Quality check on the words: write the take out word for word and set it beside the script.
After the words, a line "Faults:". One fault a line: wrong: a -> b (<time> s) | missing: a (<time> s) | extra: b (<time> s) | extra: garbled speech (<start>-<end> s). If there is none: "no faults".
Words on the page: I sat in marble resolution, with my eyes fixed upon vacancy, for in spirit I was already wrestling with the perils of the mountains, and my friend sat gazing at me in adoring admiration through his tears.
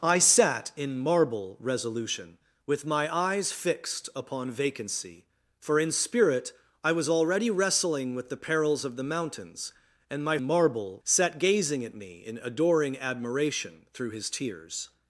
I sat in marble resolution, with my eyes fixed upon vacancy, for in spirit I was already wrestling with the perils of the mountains, and my marble sat gazing at me in adoring admiration through his tears.
Faults:
wrong: friend -> marble (10.4 s)